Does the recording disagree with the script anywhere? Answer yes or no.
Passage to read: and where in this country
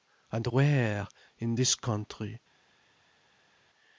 no